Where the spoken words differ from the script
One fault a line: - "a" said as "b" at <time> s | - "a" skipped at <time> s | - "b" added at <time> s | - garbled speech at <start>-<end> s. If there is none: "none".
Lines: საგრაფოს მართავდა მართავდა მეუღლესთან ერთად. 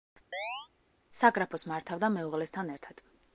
- "მართავდა" skipped at 2.1 s